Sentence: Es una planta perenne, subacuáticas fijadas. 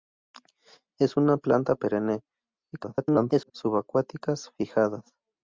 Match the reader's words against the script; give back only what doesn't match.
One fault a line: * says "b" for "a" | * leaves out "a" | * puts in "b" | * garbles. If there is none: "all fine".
* garbles